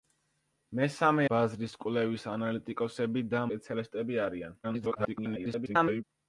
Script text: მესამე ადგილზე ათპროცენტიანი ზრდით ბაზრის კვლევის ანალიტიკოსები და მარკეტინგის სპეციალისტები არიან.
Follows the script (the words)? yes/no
no